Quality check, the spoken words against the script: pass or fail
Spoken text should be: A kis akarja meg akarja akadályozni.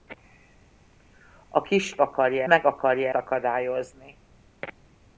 pass